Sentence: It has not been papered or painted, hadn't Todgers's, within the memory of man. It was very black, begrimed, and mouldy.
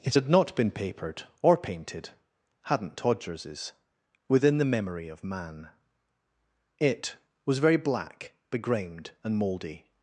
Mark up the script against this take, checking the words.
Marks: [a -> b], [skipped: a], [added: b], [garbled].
It [has -> had] not been papered or painted, hadn't Todgers's, within the memory of man. It was very black, begrimed, and mouldy.